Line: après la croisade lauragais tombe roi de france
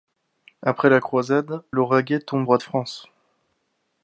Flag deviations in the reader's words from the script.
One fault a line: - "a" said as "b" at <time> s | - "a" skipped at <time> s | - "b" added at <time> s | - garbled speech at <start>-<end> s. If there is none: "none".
none